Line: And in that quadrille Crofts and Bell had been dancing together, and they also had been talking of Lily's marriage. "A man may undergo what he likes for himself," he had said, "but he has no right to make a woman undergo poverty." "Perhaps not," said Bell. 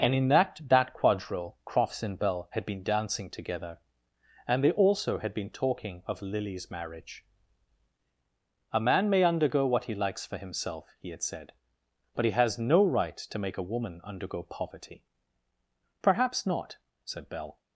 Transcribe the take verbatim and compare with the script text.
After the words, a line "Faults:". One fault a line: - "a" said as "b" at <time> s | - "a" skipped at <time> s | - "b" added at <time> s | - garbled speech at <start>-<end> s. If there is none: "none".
And in that that quadrille Crofts and Bell had been dancing together, and they also had been talking of Lily's marriage. "A man may undergo what he likes for himself," he had said, "but he has no right to make a woman undergo poverty." "Perhaps not," said Bell.
Faults:
- "that" added at 0.6 s